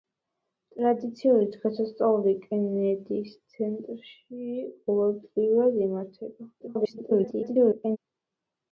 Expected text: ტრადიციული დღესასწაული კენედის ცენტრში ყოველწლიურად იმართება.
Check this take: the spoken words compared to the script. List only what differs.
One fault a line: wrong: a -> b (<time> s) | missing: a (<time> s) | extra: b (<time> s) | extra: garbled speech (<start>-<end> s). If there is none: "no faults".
extra: garbled speech (6.6-8.0 s)